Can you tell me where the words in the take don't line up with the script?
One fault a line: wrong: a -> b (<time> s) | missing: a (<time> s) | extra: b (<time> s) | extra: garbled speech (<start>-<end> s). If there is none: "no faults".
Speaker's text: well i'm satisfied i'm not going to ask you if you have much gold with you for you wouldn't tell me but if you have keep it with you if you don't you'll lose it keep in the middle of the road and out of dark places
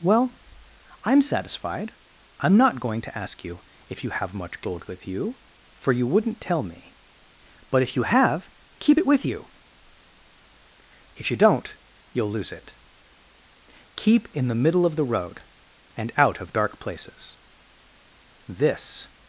extra: this (18.5 s)